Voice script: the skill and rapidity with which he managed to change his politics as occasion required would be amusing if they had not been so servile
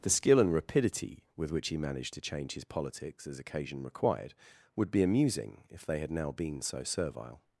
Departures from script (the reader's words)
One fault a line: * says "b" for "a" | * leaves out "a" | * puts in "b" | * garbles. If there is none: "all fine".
* says "now" for "not"